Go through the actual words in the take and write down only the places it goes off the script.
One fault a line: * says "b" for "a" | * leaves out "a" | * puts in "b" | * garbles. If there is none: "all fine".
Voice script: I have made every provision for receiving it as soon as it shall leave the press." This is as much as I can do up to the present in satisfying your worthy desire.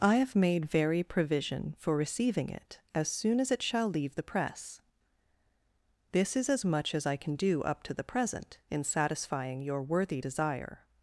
* says "very" for "every"